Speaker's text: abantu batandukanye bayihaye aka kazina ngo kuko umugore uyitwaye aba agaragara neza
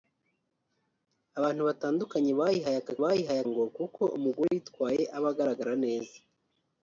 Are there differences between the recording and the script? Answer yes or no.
yes